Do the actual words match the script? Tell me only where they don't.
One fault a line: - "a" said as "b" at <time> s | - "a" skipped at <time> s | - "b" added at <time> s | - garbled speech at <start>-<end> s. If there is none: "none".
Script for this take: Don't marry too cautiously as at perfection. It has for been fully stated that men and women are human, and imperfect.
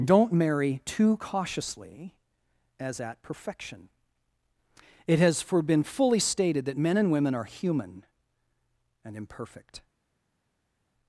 none